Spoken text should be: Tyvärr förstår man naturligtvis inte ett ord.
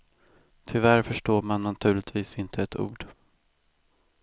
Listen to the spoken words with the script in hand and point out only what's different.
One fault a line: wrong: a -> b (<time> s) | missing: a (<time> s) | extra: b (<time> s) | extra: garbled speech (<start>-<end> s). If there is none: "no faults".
no faults